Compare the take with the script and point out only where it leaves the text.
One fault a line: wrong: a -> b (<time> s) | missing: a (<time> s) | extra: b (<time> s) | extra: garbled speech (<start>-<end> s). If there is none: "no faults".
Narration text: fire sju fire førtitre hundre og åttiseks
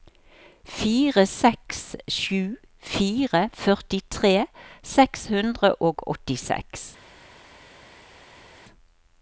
extra: seks (1.3 s)
extra: seks (5.0 s)